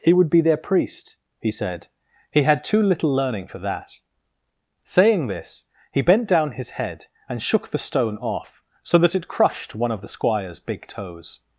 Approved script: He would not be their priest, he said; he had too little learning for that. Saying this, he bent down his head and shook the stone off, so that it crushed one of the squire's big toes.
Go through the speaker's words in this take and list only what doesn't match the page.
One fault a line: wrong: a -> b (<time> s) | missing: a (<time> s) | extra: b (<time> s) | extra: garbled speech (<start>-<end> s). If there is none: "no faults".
missing: not (0.3 s)